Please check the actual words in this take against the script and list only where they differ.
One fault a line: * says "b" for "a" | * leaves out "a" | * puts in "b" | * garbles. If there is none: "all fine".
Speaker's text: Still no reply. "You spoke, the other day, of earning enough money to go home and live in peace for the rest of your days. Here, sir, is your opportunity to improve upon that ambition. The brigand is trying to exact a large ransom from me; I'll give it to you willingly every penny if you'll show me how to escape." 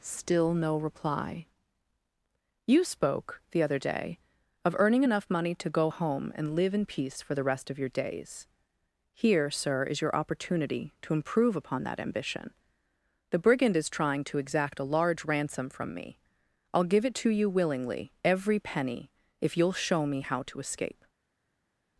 all fine